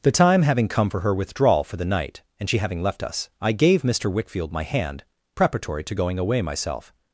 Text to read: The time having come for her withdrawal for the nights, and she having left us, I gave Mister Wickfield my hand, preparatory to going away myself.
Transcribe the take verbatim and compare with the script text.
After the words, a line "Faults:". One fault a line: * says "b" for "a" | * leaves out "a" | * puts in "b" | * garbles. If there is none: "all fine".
The time having come for her withdrawal for the night, and she having left us, I gave Mister Wickfield my hand, preparatory to going away myself.
Faults:
* says "night" for "nights"